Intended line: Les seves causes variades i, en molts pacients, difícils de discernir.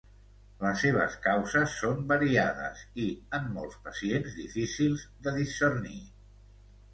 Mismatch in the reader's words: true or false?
true